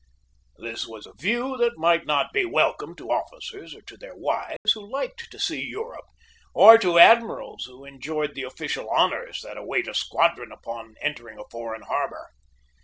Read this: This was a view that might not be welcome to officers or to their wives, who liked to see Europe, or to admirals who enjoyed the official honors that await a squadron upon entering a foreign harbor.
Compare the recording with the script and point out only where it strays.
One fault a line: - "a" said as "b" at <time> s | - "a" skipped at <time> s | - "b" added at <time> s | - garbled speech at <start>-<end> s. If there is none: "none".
none